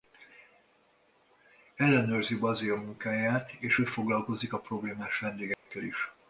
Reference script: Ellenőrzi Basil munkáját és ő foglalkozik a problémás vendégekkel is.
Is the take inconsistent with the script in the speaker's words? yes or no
no